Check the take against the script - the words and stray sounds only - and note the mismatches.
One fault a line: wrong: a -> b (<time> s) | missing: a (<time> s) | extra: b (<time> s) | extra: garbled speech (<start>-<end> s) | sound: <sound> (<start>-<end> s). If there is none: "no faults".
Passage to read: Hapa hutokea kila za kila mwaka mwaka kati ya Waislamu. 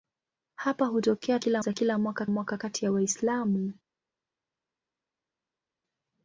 no faults